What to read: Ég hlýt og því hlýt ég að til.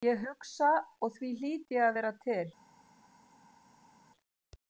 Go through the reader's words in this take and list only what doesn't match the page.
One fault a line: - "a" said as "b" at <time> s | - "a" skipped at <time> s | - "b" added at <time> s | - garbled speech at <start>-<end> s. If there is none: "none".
- "hlýt" said as "hugsa" at 0.3 s
- "vera" added at 2.0 s